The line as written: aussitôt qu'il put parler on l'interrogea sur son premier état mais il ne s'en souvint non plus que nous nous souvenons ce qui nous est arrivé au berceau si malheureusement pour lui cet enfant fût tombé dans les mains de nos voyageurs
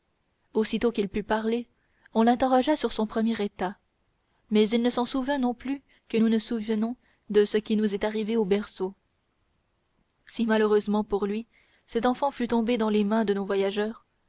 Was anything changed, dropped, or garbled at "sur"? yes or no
no